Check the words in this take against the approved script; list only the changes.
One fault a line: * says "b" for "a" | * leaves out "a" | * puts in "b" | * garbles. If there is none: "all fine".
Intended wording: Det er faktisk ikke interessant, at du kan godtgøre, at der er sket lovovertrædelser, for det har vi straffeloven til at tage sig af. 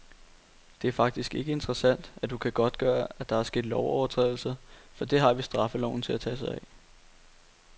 all fine